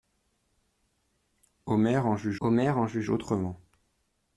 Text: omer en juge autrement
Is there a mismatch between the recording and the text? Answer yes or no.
yes